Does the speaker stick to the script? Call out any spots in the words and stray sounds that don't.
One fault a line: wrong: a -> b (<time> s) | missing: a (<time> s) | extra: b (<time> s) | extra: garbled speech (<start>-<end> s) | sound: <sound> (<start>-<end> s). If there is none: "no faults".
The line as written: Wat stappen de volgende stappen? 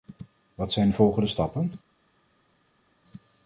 wrong: stappen -> zijn (0.7 s)